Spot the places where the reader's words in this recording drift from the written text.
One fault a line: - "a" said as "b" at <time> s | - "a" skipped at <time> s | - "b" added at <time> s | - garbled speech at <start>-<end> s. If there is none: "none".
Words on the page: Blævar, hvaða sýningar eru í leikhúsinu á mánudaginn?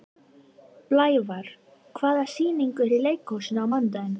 none